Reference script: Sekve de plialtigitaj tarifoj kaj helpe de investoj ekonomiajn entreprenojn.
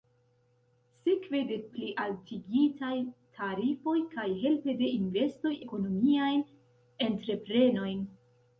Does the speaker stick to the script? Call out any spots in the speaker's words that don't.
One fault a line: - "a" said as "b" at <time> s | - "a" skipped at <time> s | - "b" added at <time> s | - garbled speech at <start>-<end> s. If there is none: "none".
none